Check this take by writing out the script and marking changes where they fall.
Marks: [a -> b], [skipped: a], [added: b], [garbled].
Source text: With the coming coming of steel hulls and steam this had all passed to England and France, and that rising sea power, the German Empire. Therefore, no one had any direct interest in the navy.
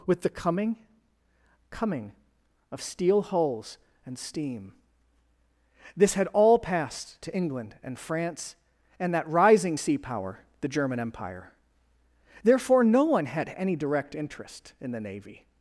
With the coming coming of steel hulls and steam this had all passed to England and France, and that rising sea power, the German Empire. Therefore, no one had any direct interest in the navy.